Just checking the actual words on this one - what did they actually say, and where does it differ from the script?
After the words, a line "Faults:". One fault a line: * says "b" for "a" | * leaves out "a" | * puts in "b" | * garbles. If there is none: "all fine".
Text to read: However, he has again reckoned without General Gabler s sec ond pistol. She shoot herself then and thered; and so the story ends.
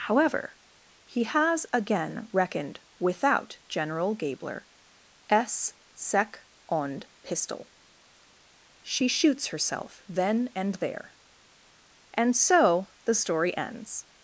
However, he has again reckoned without General Gabler s sec ond pistol. She shoots herself then and there; and so the story ends.
Faults:
* says "shoots" for "shoot"
* says "there" for "thered"